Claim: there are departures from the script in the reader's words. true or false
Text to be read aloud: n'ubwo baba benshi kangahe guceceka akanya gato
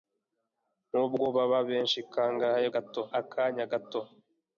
true